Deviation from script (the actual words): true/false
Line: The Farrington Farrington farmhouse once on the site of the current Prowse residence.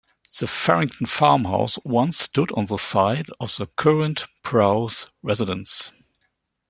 true